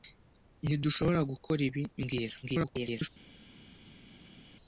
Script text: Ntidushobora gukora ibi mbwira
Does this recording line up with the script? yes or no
no